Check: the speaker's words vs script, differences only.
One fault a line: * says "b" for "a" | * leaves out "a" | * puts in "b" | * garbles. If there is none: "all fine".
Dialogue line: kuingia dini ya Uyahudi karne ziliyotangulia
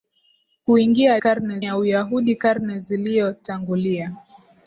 * says "karne" for "dini"